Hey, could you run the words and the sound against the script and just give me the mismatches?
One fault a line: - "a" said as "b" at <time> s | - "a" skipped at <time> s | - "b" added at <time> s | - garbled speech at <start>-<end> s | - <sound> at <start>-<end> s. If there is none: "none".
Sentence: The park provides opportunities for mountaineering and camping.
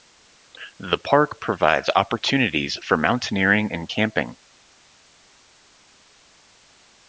none